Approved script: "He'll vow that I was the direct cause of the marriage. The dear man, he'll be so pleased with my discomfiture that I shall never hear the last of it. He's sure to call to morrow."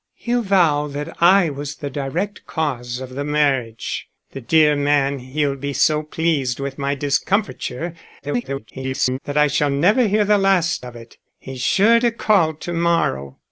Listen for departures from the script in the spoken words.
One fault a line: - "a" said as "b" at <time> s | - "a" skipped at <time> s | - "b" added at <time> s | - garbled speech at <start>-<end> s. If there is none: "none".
- garbled speech at 8.2-9.2 s